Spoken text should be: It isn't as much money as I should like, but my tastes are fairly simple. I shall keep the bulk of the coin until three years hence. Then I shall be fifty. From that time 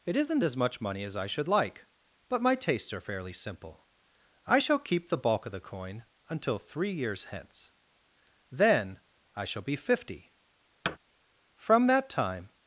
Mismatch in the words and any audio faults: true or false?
true